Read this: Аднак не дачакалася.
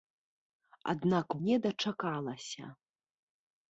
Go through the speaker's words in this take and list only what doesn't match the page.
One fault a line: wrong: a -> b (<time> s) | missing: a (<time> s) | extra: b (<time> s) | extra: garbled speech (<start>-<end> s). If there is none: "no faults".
no faults